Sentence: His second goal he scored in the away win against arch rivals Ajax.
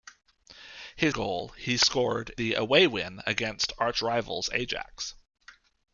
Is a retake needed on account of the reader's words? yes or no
yes